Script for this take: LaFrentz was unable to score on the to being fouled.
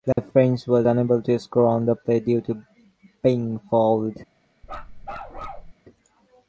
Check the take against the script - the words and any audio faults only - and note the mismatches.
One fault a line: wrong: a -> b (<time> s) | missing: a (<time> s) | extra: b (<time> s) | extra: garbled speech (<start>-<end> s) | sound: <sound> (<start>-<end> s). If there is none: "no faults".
sound: dropout (0.1-0.2 s)
extra: play due (2.0 s)
sound: bark (4.6-5.7 s)